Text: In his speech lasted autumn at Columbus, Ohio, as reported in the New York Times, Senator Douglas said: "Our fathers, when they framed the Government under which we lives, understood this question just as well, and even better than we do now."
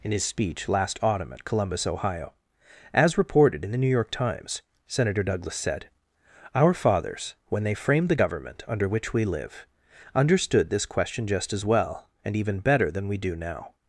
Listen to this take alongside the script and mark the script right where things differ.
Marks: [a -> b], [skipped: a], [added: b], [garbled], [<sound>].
In his speech [lasted -> last] autumn at Columbus, Ohio, as reported in the New York Times, Senator Douglas said: "Our fathers, when they framed the Government under which we [lives, -> live] understood this question just as well, and even better than we do now."